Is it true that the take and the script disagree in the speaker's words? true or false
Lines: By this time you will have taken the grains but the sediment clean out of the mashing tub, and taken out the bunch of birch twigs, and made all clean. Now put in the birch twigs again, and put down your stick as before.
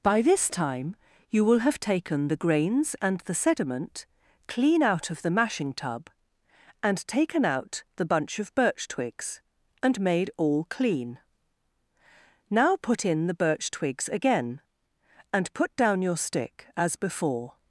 true